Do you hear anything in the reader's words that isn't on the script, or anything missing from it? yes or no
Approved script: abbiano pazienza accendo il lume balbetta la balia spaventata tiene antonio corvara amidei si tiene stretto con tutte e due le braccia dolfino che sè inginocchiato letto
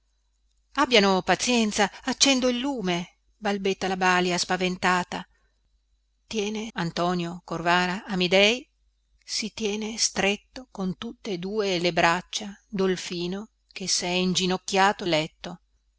no